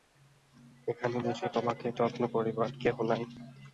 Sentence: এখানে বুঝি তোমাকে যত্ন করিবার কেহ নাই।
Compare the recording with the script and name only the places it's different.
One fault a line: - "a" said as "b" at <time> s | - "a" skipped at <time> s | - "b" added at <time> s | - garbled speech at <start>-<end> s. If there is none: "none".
none